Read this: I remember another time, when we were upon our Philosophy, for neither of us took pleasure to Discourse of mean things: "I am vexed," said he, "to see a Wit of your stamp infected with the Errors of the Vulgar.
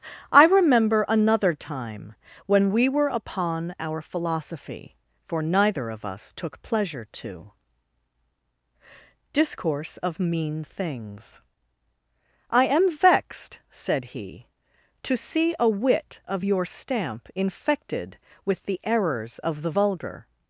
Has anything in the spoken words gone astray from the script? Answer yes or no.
no